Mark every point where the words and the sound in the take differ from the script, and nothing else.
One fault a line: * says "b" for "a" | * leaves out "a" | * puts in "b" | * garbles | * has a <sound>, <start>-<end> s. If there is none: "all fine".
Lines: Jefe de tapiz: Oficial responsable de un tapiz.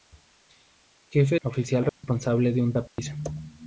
* leaves out "de tapiz"
* has a dropout, 1.9-2.0 s
* has a dropout, 2.9-3.0 s